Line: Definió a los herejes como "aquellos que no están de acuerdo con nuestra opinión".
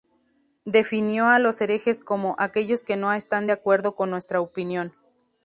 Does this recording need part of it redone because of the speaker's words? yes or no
no